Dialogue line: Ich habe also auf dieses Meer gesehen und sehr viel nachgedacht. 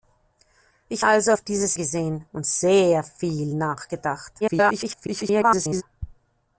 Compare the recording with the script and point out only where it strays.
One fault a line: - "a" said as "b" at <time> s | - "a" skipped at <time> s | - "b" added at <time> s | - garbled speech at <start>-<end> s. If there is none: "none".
- "habe" skipped at 1.1 s
- "Meer" skipped at 1.8 s
- garbled speech at 4.4-5.8 s